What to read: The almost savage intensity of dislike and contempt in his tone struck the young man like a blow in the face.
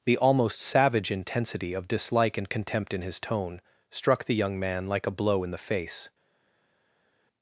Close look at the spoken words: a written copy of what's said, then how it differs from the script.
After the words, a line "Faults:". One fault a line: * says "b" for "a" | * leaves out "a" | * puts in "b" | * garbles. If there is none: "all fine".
The almost savage intensity of dislike and contempt in his tone struck the young man like a blow in the face.
Faults:
all fine